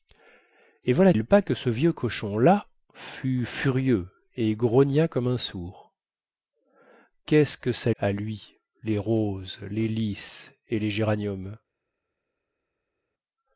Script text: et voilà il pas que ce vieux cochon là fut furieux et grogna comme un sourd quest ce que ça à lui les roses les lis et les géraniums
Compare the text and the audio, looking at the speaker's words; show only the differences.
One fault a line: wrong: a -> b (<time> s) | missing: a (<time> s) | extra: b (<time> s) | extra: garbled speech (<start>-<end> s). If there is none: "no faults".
no faults